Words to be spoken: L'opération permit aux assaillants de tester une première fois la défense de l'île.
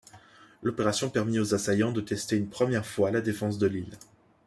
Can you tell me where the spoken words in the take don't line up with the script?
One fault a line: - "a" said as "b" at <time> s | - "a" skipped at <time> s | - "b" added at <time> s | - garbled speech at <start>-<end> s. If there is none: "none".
none